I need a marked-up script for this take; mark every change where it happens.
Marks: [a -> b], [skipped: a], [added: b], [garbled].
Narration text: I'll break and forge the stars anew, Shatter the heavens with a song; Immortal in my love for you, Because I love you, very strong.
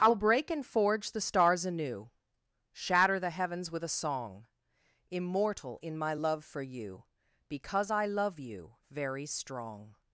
I'll break and forge the stars anew, Shatter the heavens with a song; Immortal in my love for you, Because I love you, very strong.